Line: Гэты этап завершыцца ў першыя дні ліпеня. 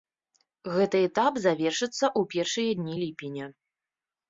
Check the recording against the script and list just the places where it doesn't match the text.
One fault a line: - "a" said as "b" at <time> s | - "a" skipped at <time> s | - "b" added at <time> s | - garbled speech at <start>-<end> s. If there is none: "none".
none